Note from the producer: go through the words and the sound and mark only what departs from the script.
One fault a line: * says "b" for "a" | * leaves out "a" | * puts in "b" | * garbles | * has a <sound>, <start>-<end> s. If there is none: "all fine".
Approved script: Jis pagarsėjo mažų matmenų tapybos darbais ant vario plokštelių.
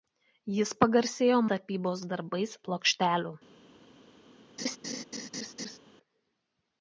* leaves out "mažų matmenų"
* leaves out "ant vario"
* has a laugh, 4.6-5.8 s